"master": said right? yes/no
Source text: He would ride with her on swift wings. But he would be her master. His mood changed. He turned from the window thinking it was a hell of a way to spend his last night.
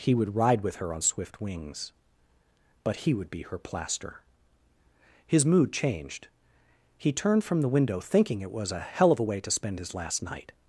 no